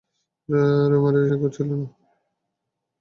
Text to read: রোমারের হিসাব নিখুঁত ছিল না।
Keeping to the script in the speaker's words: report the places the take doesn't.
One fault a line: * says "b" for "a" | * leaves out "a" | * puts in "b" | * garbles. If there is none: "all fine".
* leaves out "হিসাব"